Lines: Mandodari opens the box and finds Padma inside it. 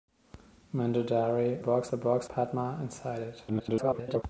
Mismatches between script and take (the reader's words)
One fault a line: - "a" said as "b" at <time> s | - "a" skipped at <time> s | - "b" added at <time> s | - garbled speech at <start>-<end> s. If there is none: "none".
- "opens" said as "box" at 1.6 s
- "and finds" skipped at 2.3 s
- garbled speech at 3.5-4.2 s